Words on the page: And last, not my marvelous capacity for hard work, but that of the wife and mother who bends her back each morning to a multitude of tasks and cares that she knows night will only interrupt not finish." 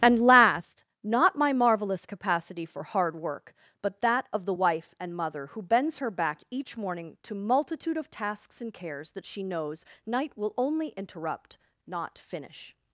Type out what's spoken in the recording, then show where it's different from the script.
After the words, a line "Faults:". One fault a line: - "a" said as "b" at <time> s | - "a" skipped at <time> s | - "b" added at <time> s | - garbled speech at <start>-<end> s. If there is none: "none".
And last, not my marvelous capacity for hard work, but that of the wife and mother who bends her back each morning to multitude of tasks and cares that she knows night will only interrupt not finish."
Faults:
- "a" skipped at 7.4 s